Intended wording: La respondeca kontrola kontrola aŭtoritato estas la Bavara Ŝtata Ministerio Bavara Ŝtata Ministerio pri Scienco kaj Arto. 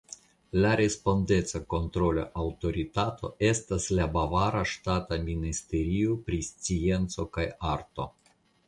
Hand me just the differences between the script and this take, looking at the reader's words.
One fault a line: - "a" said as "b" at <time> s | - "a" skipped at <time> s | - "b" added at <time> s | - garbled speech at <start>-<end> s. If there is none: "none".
- "kontrola" skipped at 2.2 s
- "Bavara Ŝtata Ministerio" skipped at 6.2 s